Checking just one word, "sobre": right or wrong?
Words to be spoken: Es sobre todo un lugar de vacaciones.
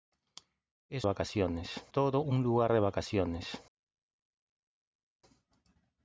wrong